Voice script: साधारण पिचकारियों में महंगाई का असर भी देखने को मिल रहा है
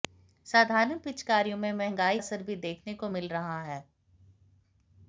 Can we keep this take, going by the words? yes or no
no